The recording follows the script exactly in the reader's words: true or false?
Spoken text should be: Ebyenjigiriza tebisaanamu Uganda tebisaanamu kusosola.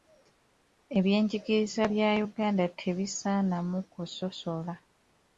false